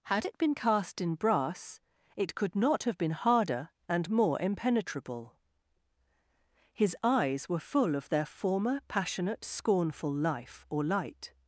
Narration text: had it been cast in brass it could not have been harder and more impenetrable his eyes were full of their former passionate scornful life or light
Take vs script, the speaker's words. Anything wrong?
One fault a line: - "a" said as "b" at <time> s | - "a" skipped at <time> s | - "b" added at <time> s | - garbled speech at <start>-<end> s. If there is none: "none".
none